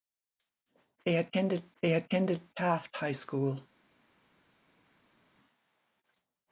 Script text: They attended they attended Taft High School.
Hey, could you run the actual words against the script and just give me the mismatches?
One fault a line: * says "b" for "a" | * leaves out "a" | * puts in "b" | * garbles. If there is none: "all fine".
all fine